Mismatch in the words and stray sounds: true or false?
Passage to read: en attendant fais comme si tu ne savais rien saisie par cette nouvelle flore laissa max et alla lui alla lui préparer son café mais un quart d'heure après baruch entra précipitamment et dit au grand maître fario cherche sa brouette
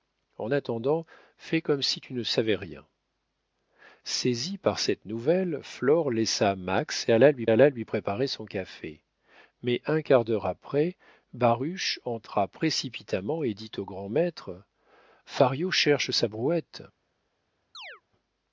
true